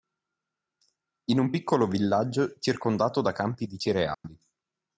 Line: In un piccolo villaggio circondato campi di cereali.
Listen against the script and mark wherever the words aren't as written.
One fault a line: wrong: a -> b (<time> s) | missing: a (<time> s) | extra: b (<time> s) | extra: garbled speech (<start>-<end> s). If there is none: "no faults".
extra: da (3.2 s)